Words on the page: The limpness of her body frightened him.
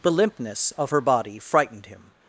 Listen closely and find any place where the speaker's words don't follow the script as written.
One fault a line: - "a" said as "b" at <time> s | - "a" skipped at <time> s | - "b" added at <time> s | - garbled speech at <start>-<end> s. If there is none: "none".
none